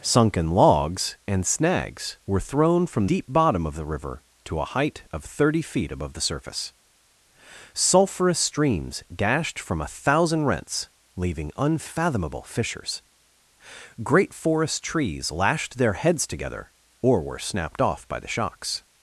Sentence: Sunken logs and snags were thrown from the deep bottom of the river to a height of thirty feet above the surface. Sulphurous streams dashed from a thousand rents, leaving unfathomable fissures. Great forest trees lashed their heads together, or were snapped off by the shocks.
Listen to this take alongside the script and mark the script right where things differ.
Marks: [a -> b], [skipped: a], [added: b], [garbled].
Sunken logs and snags were thrown from [skipped: the] deep bottom of the river to a height of thirty feet above the surface. Sulphurous streams dashed from a thousand rents, leaving unfathomable fissures. Great forest trees lashed their heads together, or were snapped off by the shocks.